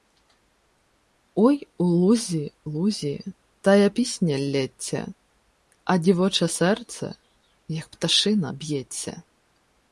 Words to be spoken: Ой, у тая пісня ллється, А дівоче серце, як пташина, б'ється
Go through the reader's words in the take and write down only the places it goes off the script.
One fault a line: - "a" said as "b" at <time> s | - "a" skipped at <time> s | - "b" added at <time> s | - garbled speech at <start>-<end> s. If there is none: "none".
- "лузі лузі" added at 1.8 s